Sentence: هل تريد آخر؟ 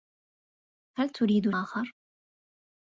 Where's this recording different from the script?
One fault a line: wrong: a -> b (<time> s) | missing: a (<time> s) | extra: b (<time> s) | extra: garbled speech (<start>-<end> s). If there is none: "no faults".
no faults